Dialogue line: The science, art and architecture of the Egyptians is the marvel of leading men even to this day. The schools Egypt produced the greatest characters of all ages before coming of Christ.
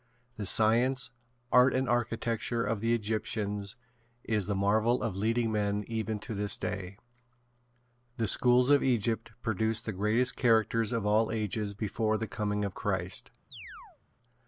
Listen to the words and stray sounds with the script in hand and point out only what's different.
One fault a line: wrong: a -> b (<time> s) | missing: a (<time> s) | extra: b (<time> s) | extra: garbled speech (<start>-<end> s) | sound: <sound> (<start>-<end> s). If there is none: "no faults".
extra: of (8.7 s)
extra: the (12.2 s)
sound: chirp (13.5-14.0 s)